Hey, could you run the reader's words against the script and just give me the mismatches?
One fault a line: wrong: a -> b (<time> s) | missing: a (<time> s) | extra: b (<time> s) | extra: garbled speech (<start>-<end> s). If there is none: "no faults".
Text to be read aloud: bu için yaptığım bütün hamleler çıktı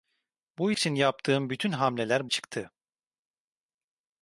no faults